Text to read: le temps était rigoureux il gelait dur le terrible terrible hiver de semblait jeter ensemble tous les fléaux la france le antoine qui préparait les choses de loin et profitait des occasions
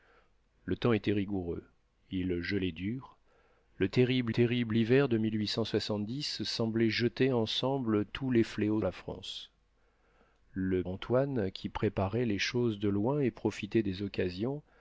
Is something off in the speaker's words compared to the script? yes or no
no